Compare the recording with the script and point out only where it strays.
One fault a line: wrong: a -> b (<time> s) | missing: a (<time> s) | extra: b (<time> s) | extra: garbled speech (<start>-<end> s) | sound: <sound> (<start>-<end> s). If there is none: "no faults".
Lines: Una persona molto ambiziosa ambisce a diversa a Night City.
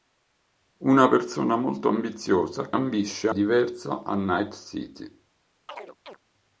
sound: chirp (5.7-6.2 s)